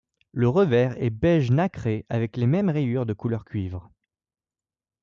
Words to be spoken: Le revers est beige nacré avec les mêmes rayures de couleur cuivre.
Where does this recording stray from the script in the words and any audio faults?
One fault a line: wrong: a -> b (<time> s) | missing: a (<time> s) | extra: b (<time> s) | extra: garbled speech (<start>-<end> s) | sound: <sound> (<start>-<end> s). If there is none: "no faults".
no faults